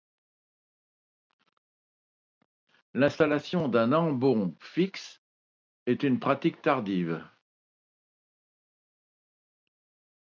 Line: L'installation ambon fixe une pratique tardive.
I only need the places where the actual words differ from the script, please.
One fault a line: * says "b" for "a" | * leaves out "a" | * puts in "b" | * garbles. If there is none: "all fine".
* puts in "d'un"
* puts in "est"